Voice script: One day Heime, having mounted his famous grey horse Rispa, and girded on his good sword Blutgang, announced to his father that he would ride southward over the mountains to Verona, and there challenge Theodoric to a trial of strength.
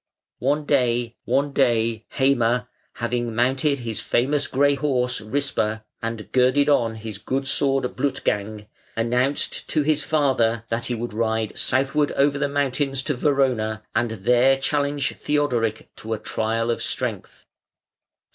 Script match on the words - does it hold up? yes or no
no